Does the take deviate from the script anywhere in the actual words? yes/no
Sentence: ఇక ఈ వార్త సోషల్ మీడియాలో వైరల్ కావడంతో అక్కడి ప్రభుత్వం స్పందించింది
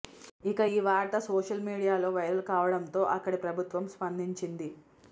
no